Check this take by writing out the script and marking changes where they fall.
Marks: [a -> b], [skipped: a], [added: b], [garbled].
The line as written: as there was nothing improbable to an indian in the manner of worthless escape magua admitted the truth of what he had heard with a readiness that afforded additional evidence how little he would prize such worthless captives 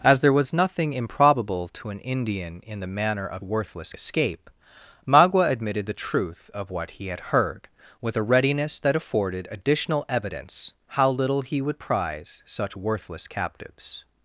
as there was nothing improbable to an indian in the manner of worthless escape magua admitted the truth of what he had heard with a readiness that afforded additional evidence how little he would prize such worthless captives